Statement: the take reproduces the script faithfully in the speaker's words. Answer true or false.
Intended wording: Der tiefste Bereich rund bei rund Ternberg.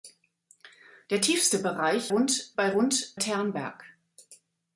true